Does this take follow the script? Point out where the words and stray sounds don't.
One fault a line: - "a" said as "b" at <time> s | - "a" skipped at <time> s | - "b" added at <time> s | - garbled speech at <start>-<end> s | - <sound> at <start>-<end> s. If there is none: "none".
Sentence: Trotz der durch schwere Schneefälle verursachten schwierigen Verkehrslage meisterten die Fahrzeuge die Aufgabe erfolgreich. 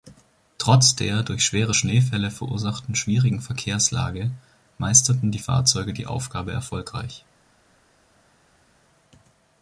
none